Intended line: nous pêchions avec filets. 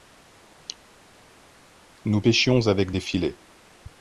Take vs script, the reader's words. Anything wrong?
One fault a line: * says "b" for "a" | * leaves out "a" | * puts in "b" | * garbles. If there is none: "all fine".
* puts in "des"